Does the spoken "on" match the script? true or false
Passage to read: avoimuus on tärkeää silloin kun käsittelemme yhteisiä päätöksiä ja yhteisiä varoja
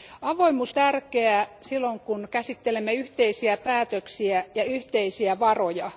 false